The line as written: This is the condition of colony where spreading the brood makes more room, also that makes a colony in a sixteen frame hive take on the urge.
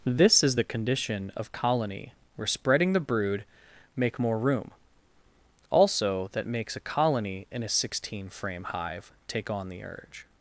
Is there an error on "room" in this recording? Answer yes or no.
no